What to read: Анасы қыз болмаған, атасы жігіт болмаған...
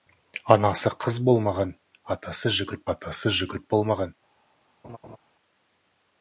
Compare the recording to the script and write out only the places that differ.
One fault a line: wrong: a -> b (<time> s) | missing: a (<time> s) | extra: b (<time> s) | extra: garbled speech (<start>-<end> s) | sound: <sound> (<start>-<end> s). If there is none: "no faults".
extra: атасы жігіт (3.0 s)
sound: laugh (4.8-5.2 s)